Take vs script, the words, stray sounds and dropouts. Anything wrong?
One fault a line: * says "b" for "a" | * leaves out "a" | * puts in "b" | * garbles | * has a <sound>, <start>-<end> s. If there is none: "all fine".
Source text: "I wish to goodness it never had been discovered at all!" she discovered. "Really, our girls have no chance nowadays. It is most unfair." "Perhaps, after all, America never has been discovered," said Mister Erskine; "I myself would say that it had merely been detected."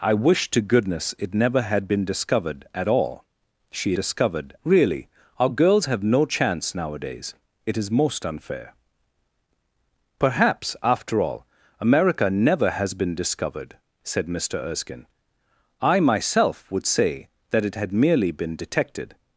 all fine